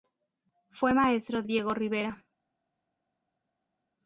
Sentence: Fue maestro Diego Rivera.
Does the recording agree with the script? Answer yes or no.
yes